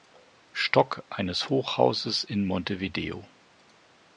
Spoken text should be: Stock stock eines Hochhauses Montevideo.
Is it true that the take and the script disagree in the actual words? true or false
true